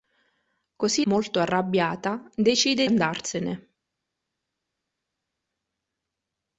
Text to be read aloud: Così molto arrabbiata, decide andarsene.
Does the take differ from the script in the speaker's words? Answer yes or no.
no